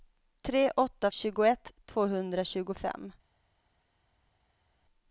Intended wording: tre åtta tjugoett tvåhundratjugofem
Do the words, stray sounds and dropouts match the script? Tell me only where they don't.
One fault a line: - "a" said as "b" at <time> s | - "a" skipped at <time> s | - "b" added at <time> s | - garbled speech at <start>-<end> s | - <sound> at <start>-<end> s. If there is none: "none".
none